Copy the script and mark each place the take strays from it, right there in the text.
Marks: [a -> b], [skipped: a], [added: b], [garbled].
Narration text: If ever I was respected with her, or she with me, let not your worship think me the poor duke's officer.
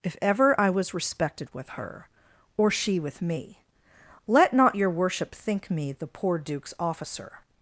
If ever I was respected with her, or she with me, let not your worship think me the poor duke's officer.